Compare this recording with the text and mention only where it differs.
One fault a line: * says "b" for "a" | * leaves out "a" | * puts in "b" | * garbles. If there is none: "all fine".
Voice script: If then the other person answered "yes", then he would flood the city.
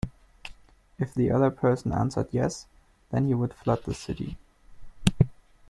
* leaves out "then"